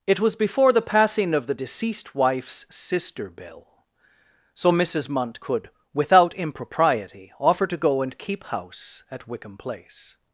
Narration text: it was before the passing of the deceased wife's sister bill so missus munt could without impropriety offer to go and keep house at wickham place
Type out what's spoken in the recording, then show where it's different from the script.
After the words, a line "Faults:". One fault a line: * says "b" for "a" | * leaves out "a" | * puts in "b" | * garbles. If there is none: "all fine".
it was before the passing of the deceased wife's sister bill so missus munt could without impropriety offer to go and keep house at wickham place
Faults:
all fine